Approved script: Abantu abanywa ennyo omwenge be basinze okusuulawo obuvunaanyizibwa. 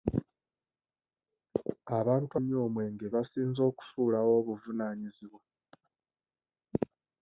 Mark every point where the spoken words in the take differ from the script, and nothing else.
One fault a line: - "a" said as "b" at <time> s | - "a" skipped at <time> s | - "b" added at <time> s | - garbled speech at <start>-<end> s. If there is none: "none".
- "abanywa" skipped at 2.3 s
- "be" skipped at 3.0 s